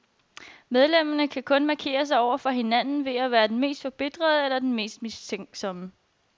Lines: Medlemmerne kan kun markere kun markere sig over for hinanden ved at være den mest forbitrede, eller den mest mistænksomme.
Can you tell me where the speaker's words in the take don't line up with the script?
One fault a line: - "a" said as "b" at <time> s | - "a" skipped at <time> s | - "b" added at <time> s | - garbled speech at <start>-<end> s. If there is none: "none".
- "kun markere" skipped at 2.0 s